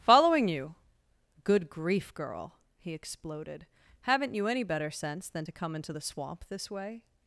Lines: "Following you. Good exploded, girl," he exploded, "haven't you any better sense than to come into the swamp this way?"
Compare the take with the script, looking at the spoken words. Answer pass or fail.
fail